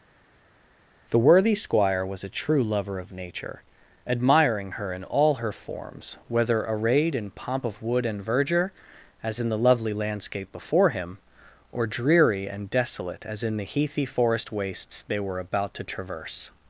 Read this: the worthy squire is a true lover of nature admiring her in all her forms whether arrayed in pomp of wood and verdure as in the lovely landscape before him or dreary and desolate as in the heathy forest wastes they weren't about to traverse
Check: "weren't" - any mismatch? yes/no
yes